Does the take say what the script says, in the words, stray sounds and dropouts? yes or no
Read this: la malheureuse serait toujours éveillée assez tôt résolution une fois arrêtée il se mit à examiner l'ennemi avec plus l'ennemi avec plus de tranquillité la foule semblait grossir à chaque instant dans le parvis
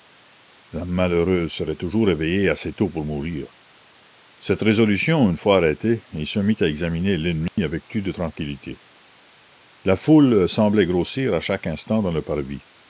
no